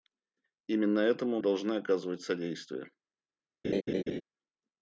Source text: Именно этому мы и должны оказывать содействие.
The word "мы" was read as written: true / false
false